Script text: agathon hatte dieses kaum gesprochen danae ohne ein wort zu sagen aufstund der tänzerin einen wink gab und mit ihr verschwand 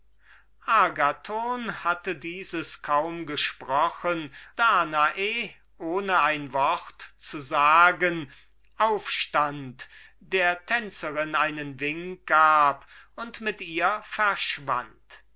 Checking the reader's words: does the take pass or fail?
pass